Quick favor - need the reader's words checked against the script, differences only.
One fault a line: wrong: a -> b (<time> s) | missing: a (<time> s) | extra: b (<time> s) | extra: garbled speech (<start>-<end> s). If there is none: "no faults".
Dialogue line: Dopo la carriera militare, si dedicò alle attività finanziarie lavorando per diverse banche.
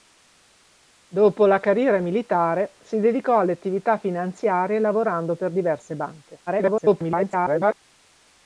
extra: garbled speech (6.5-7.8 s)